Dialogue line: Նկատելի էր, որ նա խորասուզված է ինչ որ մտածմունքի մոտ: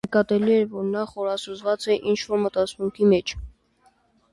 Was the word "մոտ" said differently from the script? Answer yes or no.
yes